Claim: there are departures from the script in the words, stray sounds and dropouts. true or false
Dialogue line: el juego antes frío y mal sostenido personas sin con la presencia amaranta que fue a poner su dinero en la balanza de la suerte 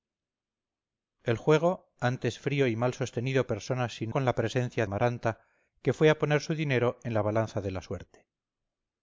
false